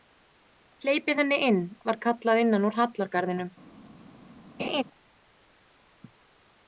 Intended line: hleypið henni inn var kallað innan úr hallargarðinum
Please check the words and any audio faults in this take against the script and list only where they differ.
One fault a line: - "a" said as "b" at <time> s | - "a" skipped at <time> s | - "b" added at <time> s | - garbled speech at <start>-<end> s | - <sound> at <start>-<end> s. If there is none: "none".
- laugh at 4.6-4.8 s